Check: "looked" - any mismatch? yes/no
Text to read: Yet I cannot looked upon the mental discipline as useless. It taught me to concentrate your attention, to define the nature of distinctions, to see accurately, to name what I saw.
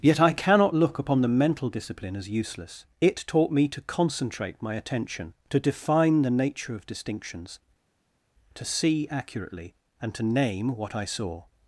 yes